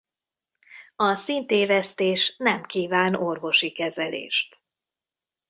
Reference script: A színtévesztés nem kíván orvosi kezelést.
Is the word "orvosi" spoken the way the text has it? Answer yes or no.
yes